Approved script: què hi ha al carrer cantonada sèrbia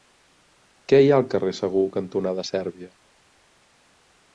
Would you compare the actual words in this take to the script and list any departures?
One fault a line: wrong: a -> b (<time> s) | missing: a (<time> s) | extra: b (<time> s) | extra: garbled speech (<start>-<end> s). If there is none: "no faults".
extra: segur (1.6 s)